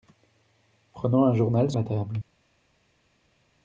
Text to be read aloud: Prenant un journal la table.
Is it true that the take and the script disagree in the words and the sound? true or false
false